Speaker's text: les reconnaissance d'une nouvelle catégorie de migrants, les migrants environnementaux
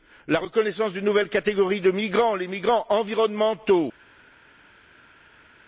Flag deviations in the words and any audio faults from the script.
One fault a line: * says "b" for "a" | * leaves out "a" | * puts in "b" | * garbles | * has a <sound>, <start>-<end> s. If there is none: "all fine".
* says "la" for "les"